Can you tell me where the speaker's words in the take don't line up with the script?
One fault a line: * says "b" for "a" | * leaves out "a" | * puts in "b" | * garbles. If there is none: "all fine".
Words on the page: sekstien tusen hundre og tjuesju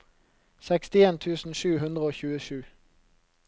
* puts in "sju"